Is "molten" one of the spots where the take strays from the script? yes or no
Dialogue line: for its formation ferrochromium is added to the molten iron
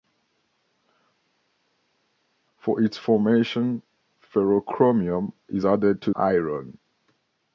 yes